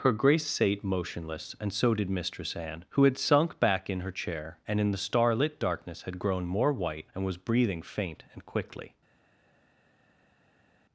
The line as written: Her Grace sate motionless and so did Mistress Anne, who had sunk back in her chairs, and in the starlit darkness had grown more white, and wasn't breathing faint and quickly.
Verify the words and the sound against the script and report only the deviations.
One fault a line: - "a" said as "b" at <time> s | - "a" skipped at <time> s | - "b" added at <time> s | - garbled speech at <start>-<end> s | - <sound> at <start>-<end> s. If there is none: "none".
- "chairs" said as "chair" at 4.1 s
- "wasn't" said as "was" at 7.2 s